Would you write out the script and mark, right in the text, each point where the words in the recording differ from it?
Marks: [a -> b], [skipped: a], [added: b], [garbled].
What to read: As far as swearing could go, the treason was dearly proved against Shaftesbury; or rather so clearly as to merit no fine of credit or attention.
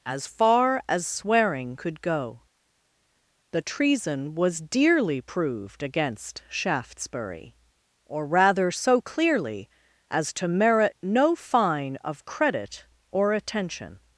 As far as swearing could go, the treason was dearly proved against Shaftesbury; or rather so clearly as to merit no fine of credit or attention.